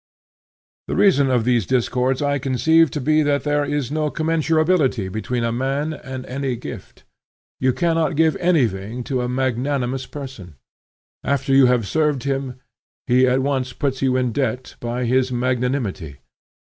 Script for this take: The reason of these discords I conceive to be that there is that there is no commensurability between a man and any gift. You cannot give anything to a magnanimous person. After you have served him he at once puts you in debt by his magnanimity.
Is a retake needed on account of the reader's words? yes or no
yes